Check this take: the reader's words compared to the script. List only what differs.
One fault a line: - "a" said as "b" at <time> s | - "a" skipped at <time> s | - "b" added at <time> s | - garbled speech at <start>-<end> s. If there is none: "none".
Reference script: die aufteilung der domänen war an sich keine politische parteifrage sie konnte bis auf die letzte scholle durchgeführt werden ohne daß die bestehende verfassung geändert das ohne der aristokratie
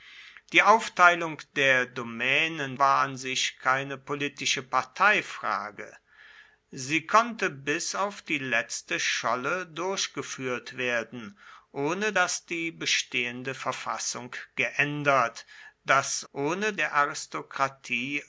none